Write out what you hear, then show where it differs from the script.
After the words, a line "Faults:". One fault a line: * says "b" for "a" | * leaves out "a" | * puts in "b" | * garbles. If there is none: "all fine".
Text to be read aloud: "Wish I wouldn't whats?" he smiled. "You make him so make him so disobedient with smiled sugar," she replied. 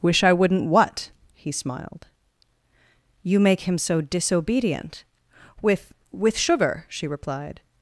"Wish I wouldn't what?" he smiled. "You make him so disobedient with with sugar," she replied.
Faults:
* says "what" for "whats"
* leaves out "make him so"
* says "with" for "smiled"